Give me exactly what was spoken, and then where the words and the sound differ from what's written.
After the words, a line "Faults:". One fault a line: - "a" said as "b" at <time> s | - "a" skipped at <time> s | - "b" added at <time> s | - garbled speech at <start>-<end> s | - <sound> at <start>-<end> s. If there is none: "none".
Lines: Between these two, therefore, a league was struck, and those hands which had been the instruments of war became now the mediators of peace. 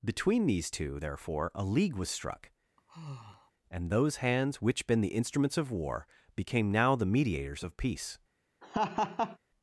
Between these two, therefore, a league was struck, and those hands which been the instruments of war became now the mediators of peace.
Faults:
- sigh at 2.8-3.5 s
- "had" skipped at 4.9 s
- laugh at 8.6-9.4 s